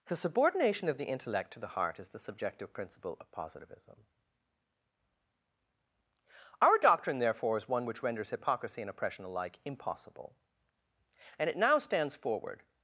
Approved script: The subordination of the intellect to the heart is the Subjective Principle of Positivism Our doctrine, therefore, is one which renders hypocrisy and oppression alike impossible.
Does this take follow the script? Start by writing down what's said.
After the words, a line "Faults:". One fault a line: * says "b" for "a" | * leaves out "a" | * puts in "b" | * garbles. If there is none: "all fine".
The subordination of the intellect to the heart is the Subjective Principle of Positivism Our doctrine, therefore, is one which renders hypocrisy and oppression alike impossible. And it now stands forward
Faults:
* puts in "And it now stands forward"